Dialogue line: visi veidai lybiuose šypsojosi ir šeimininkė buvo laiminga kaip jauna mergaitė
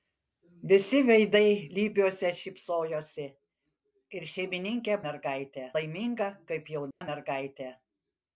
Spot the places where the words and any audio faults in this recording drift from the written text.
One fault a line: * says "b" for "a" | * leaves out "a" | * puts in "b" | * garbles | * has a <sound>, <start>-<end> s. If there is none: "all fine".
* says "mergaitė" for "buvo"
* has a dropout, 6.9-7.0 s